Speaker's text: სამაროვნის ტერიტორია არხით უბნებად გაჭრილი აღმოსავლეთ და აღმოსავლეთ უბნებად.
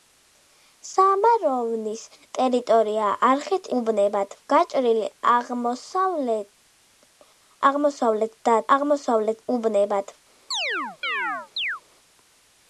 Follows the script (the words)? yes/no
yes